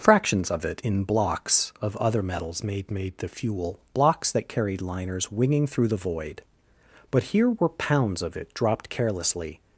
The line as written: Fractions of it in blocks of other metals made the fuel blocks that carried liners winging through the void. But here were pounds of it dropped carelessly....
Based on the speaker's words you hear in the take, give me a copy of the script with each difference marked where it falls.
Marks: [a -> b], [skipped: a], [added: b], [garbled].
Fractions of it in blocks of other metals made [added: made] the fuel blocks that carried liners winging through the void. But here were pounds of it dropped carelessly....